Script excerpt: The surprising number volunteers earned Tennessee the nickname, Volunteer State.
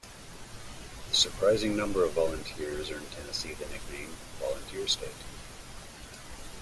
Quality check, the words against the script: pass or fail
fail